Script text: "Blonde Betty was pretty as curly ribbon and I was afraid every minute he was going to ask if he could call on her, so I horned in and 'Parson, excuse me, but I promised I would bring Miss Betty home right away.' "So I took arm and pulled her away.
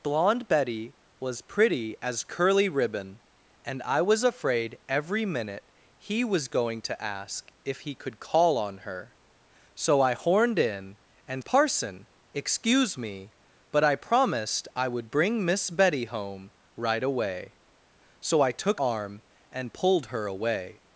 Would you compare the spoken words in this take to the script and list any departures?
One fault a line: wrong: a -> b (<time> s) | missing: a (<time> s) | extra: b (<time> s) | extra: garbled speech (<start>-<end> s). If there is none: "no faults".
no faults